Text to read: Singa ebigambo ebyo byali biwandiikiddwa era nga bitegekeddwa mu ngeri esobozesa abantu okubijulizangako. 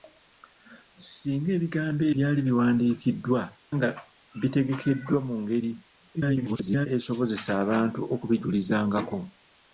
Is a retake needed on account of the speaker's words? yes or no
yes